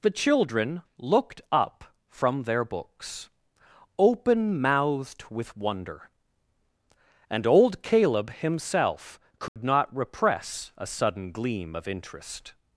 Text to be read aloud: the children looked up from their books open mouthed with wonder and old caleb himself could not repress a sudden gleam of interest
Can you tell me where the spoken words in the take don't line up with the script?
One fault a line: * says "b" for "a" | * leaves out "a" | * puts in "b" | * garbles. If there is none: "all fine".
all fine